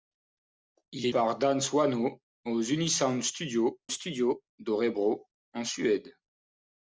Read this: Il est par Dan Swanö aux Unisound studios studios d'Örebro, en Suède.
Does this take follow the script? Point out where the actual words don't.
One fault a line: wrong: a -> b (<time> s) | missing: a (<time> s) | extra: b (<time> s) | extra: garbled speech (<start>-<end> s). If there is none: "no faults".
no faults